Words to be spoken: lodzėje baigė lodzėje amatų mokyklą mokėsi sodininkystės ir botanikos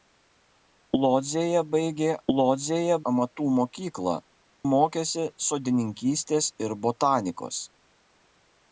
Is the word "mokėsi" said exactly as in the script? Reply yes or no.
yes